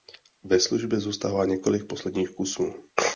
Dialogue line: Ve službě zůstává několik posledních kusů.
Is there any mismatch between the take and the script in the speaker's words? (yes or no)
no